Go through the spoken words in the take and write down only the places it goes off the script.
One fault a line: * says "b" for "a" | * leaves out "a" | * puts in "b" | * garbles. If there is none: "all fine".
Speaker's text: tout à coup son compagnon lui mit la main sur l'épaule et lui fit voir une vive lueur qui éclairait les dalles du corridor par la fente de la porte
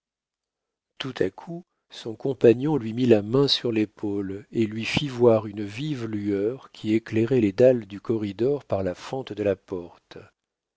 all fine